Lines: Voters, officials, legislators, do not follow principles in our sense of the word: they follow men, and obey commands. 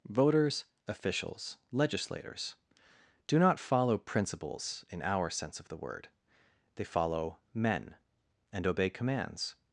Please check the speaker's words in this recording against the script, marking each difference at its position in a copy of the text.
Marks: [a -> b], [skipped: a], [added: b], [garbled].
Voters, officials, legislators, do not follow principles in our sense of the word: they follow men, and obey commands.